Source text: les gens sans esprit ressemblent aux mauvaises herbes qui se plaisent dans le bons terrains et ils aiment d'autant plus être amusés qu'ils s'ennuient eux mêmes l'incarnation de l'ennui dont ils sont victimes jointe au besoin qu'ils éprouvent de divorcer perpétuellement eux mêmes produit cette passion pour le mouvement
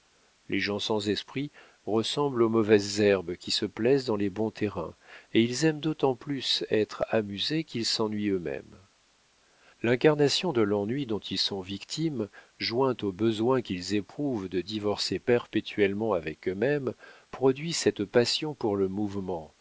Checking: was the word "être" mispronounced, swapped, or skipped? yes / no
no